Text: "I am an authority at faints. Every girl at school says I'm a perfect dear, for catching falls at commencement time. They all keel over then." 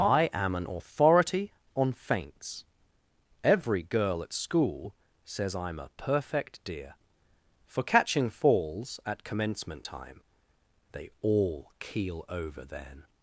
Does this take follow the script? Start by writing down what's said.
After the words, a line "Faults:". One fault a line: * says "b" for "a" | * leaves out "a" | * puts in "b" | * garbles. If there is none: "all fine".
"I am an authority on faints. Every girl at school says I'm a perfect dear, for catching falls at commencement time. They all keel over then."
Faults:
* says "on" for "at"